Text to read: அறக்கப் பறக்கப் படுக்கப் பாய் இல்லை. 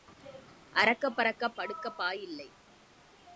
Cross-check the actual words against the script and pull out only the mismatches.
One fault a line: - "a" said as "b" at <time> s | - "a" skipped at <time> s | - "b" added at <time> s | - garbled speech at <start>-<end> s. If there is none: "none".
none